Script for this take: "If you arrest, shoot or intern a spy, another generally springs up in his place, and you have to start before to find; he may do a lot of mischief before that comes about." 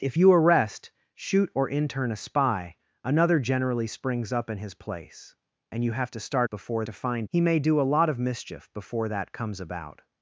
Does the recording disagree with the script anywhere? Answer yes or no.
no